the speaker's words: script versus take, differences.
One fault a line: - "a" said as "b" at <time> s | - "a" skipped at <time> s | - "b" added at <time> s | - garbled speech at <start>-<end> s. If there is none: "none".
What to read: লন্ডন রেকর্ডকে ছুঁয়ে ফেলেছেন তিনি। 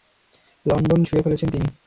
- "রেকর্ডকে" skipped at 1.0 s